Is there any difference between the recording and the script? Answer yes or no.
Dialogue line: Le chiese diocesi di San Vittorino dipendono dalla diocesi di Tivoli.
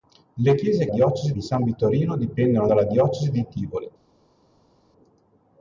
no